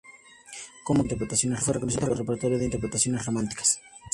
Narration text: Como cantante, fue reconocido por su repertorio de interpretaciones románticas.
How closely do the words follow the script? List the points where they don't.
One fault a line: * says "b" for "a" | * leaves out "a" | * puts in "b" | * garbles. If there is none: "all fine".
* says "interpretaciones" for "cantante"
* leaves out "por"